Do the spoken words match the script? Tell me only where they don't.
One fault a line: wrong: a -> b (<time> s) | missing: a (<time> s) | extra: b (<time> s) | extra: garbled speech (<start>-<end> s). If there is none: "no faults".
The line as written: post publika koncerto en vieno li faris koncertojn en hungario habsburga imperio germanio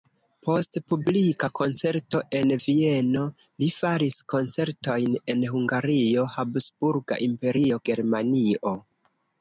no faults